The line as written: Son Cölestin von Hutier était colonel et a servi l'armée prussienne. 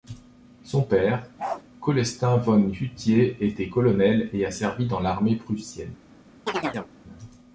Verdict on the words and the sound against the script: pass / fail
fail